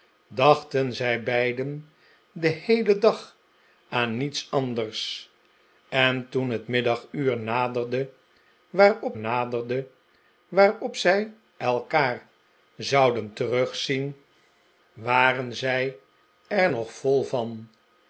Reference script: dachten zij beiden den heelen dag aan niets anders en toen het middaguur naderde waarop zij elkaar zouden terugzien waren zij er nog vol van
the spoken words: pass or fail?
fail